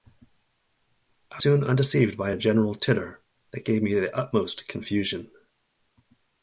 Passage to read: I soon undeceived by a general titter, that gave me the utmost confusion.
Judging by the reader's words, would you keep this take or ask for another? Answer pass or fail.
pass